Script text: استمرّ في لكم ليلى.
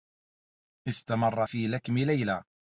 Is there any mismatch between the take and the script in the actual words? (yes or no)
no